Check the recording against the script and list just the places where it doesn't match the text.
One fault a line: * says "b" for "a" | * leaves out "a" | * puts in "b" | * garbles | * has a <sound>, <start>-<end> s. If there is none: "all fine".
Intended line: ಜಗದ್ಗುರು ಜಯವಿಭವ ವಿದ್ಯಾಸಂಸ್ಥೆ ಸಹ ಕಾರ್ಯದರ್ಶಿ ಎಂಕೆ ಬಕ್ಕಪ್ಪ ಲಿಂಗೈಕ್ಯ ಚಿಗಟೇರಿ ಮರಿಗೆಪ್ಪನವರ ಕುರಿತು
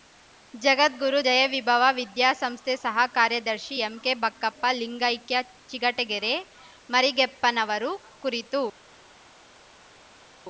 all fine